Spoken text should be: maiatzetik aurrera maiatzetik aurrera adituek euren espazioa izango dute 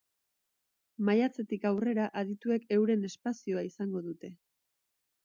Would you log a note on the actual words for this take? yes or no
yes